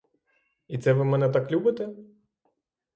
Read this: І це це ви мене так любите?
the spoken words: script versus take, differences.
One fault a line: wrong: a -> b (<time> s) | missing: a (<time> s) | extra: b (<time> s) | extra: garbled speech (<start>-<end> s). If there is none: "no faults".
missing: це (0.9 s)